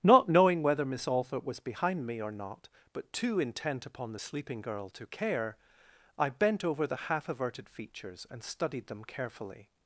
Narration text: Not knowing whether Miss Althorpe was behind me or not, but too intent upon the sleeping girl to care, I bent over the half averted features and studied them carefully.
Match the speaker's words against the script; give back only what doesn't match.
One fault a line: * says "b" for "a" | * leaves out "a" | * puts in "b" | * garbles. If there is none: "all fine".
all fine